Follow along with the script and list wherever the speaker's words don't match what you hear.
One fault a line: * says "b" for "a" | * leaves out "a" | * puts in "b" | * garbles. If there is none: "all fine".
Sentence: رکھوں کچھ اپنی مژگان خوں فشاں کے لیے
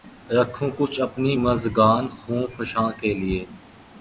all fine